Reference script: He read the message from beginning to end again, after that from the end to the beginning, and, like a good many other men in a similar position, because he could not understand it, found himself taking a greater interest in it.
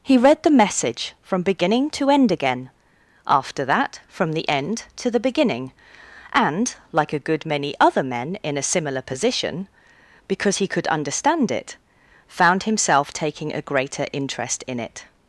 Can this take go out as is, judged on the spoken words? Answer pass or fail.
fail